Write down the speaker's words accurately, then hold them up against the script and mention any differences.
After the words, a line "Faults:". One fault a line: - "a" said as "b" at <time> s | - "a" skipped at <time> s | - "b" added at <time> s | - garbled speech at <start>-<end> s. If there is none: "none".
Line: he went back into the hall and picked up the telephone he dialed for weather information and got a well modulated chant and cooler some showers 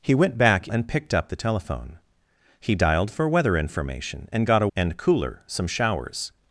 he went back and picked up the telephone he dialed for weather information and got a and cooler some showers
Faults:
- "into the hall" skipped at 0.7 s
- "well modulated chant" skipped at 4.7 s